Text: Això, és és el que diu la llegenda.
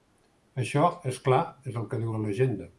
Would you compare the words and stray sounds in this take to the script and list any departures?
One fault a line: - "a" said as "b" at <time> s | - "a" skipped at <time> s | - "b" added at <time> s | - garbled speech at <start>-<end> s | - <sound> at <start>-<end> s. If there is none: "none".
- "clar" added at 1.3 s